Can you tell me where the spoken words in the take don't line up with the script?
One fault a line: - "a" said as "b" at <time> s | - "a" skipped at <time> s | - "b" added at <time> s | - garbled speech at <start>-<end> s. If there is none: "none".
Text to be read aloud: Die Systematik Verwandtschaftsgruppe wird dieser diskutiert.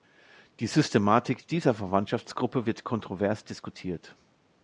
- "dieser" added at 1.5 s
- "dieser" said as "kontrovers" at 2.8 s